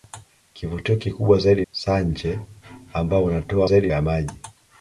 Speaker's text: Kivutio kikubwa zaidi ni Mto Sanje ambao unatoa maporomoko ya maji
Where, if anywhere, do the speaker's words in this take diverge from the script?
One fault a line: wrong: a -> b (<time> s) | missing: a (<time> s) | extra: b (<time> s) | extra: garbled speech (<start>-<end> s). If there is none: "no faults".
missing: ni Mto (1.6 s)
wrong: maporomoko -> zaidi (3.6 s)